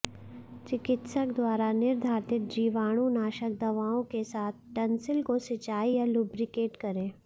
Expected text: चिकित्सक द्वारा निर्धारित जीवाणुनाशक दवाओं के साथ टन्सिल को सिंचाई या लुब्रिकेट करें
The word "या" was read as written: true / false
true